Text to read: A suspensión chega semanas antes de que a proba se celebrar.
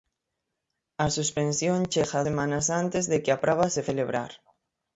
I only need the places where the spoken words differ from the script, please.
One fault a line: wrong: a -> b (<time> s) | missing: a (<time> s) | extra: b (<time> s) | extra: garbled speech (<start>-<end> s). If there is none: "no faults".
no faults